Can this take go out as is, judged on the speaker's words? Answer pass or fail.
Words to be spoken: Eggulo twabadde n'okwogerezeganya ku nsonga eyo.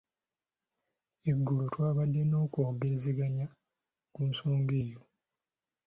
pass